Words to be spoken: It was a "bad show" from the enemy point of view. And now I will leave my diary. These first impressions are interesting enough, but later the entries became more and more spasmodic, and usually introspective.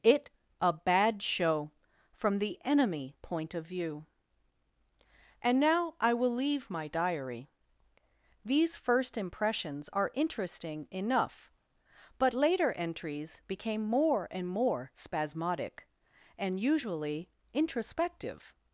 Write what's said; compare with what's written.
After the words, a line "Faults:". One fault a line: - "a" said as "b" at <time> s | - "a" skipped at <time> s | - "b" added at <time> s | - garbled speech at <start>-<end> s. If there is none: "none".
It a "bad show" from the enemy point of view. And now I will leave my diary. These first impressions are interesting enough, but later entries became more and more spasmodic, and usually introspective.
Faults:
- "was" skipped at 0.3 s
- "the" skipped at 12.7 s